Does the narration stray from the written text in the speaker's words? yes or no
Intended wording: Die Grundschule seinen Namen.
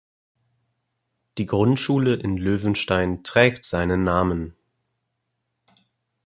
yes